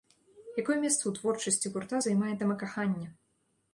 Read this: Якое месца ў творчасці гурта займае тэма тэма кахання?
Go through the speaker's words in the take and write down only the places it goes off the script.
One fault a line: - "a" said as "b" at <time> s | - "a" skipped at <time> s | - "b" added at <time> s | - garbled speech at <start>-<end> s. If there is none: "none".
- "тэма" skipped at 2.5 s